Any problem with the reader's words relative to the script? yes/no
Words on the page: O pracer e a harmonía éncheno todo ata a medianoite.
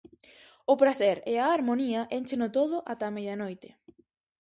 no